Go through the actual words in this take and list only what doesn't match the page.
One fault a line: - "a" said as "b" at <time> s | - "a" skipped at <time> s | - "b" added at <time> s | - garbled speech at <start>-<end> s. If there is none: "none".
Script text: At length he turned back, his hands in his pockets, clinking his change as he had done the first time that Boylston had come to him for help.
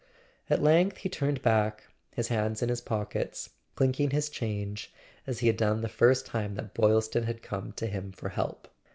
none